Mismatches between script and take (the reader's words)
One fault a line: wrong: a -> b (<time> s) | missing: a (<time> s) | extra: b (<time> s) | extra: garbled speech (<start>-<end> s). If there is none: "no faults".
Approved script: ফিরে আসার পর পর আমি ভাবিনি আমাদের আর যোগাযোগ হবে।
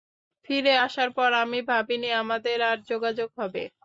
missing: পর (1.3 s)